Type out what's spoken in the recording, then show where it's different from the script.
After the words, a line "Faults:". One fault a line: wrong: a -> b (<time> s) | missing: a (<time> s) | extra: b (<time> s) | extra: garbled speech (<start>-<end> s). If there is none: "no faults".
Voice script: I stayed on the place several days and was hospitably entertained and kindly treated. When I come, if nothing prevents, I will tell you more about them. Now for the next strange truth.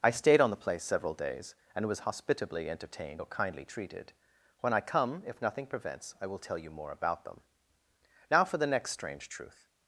I stayed on the place several days and was hospitably entertained or kindly treated. When I come, if nothing prevents, I will tell you more about them. Now for the next strange truth.
Faults:
wrong: and -> or (3.2 s)